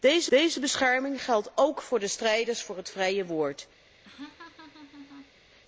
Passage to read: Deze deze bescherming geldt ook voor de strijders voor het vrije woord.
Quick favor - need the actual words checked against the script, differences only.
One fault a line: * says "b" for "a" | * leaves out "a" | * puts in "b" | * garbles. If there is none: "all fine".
all fine